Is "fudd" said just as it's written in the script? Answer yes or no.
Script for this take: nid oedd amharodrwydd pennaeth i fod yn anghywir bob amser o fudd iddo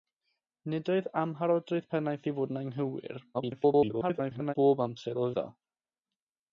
no